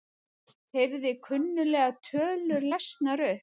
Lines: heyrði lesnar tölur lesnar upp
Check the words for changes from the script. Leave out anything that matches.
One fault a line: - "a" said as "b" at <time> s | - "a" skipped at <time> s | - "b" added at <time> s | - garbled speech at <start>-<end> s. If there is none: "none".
- "lesnar" said as "kunnuglegar" at 1.3 s